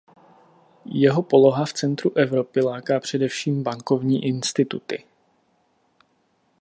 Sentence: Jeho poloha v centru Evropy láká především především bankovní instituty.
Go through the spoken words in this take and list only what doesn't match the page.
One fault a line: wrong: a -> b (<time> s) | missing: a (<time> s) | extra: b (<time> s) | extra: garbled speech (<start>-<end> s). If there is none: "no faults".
missing: především (3.6 s)